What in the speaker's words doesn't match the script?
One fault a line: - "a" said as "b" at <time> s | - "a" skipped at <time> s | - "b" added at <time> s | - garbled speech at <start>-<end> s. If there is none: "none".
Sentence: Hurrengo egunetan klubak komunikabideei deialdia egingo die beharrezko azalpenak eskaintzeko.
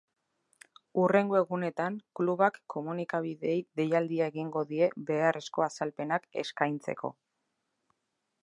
none